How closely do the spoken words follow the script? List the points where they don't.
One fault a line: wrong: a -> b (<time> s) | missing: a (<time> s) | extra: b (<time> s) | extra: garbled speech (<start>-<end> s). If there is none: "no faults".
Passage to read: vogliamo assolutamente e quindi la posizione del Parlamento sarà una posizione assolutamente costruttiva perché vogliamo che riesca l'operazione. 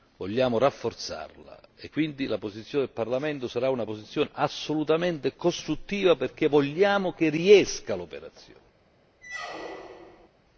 wrong: assolutamente -> rafforzarla (0.6 s)